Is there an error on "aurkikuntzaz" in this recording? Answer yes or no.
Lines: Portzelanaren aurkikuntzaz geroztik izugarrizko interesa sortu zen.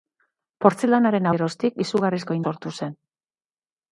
yes